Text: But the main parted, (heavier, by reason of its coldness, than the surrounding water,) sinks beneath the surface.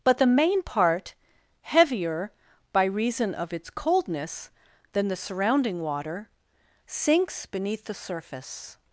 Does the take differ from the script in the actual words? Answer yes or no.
yes